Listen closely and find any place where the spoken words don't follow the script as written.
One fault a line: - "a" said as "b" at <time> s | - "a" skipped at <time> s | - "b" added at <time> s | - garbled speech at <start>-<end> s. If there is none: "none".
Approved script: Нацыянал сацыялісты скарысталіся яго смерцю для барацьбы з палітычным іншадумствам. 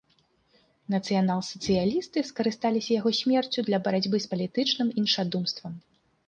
none